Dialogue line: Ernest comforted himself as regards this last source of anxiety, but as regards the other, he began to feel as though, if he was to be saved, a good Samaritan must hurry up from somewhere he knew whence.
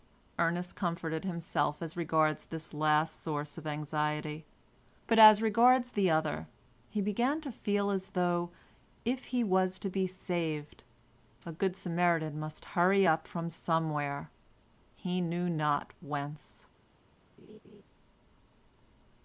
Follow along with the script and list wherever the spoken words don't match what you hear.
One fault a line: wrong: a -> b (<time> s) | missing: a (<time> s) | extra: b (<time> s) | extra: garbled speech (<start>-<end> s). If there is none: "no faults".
extra: not (15.5 s)